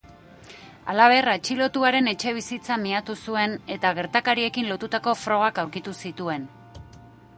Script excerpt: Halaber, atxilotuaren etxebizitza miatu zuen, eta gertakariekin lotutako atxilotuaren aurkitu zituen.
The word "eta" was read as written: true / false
true